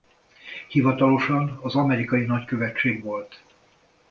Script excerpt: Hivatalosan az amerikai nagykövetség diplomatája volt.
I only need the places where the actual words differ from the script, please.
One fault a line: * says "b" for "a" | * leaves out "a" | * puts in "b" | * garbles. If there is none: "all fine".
* leaves out "diplomatája"